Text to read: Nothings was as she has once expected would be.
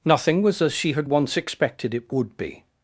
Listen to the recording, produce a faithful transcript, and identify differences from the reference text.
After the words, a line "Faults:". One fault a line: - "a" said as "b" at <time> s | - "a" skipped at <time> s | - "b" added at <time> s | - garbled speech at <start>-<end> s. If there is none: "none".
Nothing was as she had once expected it would be.
Faults:
- "Nothings" said as "Nothing" at 0.0 s
- "has" said as "had" at 0.9 s
- "it" added at 1.9 s